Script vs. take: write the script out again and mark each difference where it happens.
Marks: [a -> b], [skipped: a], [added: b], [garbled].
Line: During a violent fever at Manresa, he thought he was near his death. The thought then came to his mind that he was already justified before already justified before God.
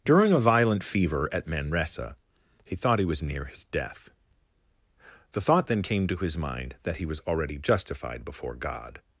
During a violent fever at Manresa, he thought he was near his death. The thought then came to his mind that he was already justified before [skipped: already justified before] God.